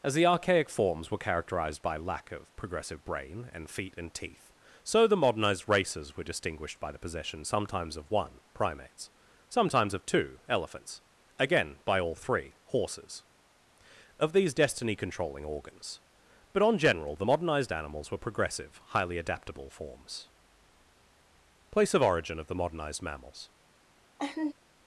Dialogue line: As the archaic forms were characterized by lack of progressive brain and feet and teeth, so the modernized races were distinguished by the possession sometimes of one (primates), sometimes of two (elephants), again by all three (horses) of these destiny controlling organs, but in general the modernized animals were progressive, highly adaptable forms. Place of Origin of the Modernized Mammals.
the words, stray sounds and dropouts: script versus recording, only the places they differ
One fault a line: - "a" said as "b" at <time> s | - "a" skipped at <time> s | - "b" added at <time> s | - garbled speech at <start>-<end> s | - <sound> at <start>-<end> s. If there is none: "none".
- "in" said as "on" at 16.6 s
- laugh at 24.2-24.5 s